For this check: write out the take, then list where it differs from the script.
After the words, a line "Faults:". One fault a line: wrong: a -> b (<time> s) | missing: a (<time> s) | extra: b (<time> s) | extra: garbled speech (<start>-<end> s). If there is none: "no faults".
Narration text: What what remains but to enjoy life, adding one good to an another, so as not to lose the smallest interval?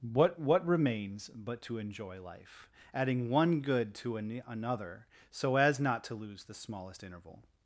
What what remains but to enjoy life, adding one good to an another, so as not to lose the smallest interval?
Faults:
no faults